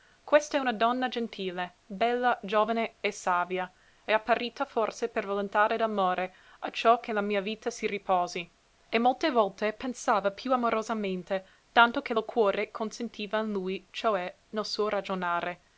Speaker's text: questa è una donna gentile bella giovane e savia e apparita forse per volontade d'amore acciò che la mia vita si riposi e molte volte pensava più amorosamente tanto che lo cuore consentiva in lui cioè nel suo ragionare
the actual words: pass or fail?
pass